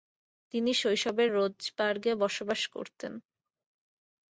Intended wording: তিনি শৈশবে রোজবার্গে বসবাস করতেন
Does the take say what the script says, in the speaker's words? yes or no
yes